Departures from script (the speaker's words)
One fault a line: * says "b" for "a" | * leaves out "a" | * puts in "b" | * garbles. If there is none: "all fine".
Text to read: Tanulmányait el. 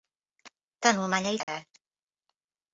all fine